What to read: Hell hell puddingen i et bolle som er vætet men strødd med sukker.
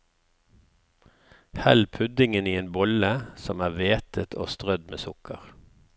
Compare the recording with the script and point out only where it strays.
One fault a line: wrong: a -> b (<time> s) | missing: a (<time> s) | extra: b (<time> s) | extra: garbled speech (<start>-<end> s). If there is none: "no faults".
missing: hell (1.9 s)
wrong: et -> en (2.6 s)
wrong: men -> og (4.3 s)